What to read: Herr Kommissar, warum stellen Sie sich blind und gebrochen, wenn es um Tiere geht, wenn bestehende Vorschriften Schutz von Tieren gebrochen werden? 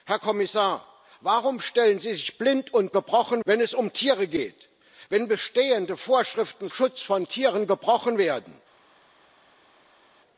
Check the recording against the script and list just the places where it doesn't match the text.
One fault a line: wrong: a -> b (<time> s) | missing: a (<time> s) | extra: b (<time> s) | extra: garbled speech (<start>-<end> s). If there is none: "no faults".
no faults